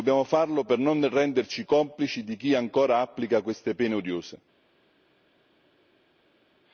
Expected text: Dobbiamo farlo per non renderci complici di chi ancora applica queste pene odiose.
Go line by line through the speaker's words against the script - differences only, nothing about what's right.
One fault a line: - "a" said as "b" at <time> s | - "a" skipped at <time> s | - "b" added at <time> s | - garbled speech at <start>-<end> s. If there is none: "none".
none